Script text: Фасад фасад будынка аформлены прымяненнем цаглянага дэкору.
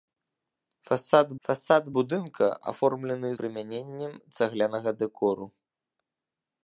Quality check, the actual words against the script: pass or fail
pass